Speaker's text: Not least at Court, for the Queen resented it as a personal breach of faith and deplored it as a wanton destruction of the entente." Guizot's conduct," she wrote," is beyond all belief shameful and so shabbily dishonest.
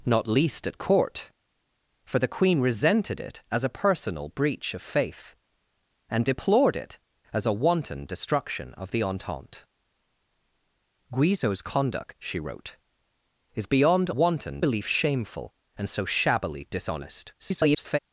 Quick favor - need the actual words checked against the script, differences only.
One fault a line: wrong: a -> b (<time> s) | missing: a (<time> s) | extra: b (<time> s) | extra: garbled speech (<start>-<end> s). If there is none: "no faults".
wrong: all -> wanton (14.1 s)
extra: garbled speech (17.4-18.0 s)